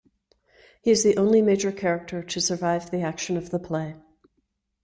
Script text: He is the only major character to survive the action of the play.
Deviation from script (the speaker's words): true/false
false